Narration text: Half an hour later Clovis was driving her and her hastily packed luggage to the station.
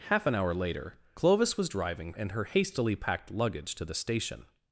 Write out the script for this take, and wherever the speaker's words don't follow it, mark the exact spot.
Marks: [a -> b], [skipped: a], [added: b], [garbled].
Half an hour later Clovis was driving [skipped: her] and her hastily packed luggage to the station.